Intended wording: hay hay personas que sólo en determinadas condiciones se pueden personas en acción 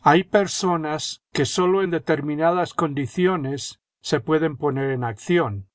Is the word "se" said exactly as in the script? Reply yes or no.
yes